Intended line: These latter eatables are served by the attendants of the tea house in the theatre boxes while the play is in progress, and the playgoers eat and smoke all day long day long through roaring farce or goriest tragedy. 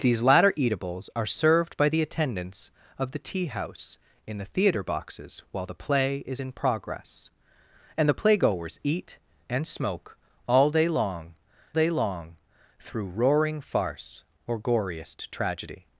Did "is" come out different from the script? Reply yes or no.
no